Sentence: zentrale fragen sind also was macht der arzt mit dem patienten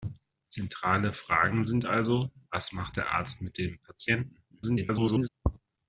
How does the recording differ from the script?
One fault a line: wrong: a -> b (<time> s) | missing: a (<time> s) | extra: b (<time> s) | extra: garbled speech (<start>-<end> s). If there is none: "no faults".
extra: garbled speech (4.5-5.3 s)